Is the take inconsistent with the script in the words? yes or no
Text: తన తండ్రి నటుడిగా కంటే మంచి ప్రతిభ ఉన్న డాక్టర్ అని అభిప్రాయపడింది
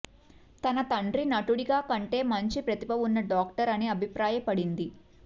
no